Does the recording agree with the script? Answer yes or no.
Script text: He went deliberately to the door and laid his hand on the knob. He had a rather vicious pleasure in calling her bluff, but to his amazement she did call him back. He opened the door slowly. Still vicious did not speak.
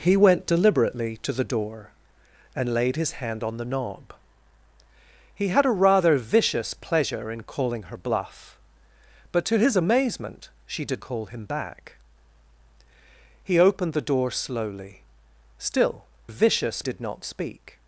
yes